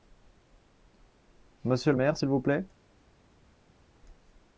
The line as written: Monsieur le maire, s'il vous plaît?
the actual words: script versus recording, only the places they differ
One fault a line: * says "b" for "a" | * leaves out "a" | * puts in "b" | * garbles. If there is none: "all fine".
all fine